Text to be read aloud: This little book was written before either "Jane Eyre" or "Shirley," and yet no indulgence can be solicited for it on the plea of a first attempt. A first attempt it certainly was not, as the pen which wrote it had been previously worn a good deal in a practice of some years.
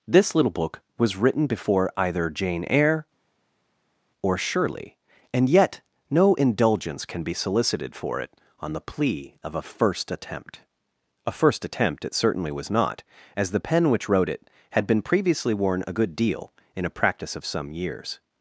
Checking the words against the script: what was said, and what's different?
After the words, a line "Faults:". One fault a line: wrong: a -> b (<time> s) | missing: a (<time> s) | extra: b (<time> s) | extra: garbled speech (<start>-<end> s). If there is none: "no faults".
This little book was written before either "Jane Eyre" or "Shirley," and yet no indulgence can be solicited for it on the plea of a first attempt. A first attempt it certainly was not, as the pen which wrote it had been previously worn a good deal in a practice of some years.
Faults:
no faults